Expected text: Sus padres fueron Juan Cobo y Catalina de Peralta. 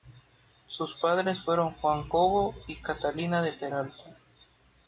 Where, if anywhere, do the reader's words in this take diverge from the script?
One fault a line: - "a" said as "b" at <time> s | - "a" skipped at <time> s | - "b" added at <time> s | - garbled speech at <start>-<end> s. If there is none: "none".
none